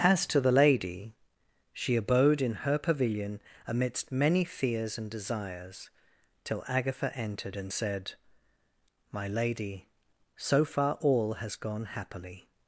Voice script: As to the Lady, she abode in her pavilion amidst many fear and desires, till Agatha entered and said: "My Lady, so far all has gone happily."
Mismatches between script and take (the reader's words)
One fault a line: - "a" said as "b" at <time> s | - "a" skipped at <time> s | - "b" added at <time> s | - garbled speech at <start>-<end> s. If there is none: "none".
- "fear" said as "fears" at 4.4 s